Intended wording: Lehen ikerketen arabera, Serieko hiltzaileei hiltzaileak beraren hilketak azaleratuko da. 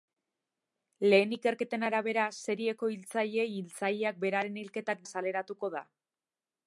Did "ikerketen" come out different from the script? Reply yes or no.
no